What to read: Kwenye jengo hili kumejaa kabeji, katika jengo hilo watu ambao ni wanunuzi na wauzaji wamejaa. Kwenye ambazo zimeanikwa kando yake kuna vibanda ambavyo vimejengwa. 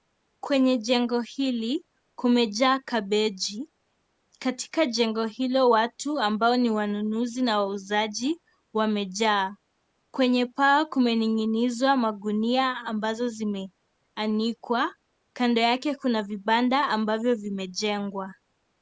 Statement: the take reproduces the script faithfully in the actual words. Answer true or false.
false